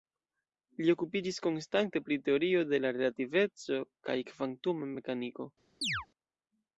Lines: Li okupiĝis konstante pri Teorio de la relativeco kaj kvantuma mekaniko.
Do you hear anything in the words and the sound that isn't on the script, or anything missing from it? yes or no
yes